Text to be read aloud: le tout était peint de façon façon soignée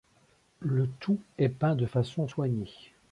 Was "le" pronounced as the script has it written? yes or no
yes